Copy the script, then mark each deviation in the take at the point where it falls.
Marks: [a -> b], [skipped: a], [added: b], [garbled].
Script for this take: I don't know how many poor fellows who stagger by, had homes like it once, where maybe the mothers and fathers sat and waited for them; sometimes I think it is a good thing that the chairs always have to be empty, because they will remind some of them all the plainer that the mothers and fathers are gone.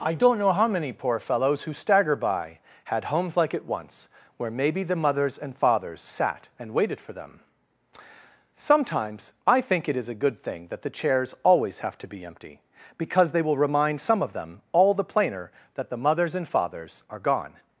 I don't know how many poor fellows who stagger by, had homes like it once, where maybe the mothers and fathers sat and waited for them; sometimes I think it is a good thing that the chairs always have to be empty, because they will remind some of them all the plainer that the mothers and fathers are gone.